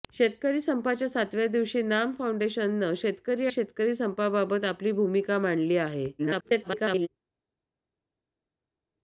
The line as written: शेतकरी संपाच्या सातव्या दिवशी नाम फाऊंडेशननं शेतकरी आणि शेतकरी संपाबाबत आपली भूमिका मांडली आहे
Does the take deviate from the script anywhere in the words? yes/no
yes